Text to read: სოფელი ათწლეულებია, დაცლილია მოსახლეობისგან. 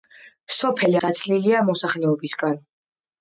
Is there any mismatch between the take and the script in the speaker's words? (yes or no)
yes